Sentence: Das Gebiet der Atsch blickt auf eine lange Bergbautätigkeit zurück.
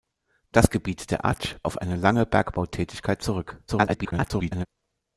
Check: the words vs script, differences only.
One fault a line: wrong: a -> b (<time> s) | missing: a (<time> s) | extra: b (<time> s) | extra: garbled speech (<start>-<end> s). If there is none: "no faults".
missing: blickt (1.6 s)
extra: garbled speech (3.7-4.7 s)